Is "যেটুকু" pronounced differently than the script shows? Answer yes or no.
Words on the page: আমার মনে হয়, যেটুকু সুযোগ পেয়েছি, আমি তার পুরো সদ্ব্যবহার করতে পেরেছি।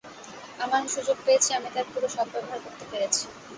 yes